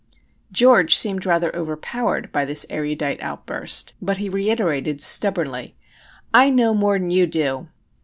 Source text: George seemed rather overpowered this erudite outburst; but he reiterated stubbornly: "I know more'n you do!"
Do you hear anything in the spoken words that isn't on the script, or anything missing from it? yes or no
yes